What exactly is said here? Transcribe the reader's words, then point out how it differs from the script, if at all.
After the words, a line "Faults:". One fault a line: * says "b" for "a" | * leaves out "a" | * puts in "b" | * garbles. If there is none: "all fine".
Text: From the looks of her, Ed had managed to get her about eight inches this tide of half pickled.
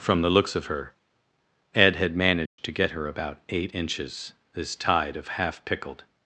From the looks of her, Ed had managed to get her about eight inches this tide of half pickled.
Faults:
all fine